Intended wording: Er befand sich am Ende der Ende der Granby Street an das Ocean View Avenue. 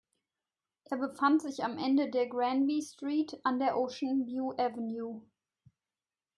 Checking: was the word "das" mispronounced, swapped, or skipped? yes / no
yes